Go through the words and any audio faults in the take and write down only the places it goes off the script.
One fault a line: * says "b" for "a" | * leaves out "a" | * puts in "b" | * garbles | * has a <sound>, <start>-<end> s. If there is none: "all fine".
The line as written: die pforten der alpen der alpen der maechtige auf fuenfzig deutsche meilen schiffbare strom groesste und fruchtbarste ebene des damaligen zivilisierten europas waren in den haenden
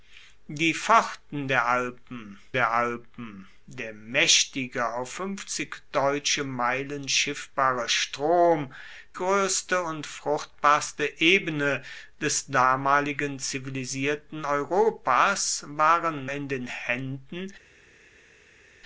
all fine